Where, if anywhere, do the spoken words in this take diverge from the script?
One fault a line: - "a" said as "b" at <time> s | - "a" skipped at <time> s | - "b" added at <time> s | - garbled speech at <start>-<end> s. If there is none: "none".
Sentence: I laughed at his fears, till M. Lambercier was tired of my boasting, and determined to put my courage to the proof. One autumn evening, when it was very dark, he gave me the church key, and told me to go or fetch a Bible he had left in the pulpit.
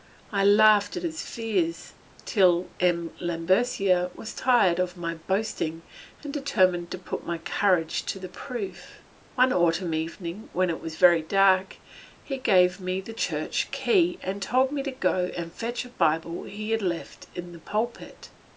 - "or" said as "and" at 15.3 s